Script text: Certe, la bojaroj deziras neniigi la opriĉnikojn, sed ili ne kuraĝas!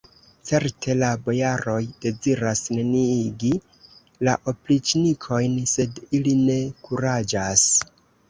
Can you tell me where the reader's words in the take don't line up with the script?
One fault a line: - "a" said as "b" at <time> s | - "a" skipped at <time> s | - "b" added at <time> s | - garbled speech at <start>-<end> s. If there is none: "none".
none